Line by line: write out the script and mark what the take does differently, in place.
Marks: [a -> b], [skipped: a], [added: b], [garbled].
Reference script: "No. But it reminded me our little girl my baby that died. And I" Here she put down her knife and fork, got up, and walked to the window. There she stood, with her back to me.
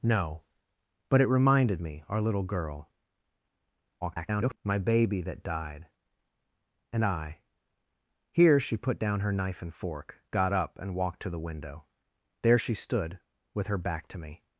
"No. But it reminded me our little girl [garbled] my baby that died. And I" Here she put down her knife and fork, got up, and walked to the window. There she stood, with her back to me.